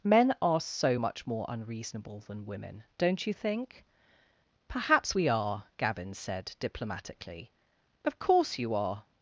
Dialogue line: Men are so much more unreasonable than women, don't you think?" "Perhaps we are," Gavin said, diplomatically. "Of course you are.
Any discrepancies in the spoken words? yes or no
no